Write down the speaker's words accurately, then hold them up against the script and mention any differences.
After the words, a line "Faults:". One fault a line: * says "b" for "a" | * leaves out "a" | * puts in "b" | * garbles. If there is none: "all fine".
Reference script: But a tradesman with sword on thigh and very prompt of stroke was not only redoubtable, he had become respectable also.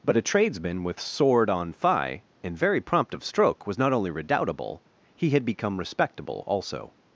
But a tradesman with sword on thigh and very prompt of stroke was not only redoubtable, he had become respectable also.
Faults:
all fine